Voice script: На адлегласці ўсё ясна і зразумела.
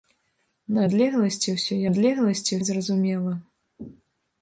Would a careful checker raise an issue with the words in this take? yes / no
yes